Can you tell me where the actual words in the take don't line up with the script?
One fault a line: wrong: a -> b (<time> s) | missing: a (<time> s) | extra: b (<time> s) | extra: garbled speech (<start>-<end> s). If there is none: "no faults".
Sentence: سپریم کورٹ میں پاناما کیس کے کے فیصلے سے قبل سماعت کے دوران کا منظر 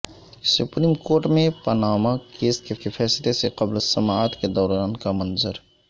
no faults